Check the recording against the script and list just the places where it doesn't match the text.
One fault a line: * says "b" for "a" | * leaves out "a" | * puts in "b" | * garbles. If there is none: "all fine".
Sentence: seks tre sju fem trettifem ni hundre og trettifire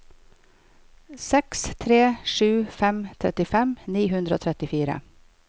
all fine